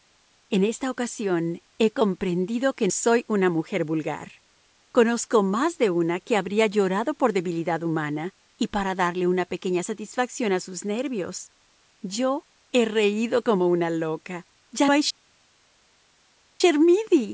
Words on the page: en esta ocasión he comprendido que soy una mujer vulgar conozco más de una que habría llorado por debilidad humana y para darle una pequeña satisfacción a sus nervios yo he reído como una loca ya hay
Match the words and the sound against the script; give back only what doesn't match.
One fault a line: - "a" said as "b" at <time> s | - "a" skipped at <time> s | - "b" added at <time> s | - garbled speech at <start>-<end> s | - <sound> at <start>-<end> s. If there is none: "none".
none